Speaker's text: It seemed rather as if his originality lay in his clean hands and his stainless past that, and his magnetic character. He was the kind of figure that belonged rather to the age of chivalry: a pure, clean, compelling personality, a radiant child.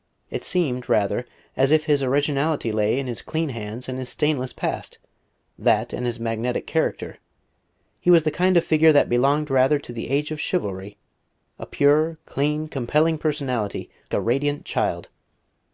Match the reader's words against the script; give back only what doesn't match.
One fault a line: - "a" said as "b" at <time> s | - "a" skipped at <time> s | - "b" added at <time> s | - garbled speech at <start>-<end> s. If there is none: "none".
none